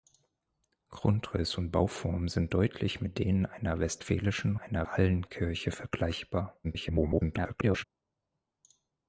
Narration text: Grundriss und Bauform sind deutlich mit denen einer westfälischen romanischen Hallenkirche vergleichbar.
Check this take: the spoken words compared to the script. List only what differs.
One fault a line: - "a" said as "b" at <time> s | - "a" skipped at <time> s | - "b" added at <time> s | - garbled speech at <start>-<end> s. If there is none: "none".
- "romanischen" said as "einer" at 4.5 s
- garbled speech at 6.6-7.8 s